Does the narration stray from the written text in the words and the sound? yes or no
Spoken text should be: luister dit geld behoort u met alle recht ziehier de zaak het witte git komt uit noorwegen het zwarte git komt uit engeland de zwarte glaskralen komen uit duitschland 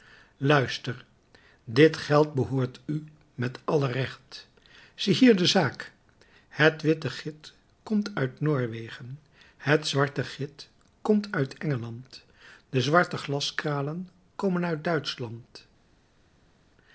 no